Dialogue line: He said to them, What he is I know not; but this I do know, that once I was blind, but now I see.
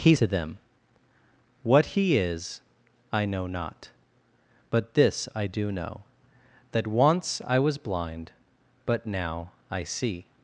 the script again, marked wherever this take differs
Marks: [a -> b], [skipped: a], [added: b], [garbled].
He [skipped: said] to them, What he is I know not; but this I do know, that once I was blind, but now I see.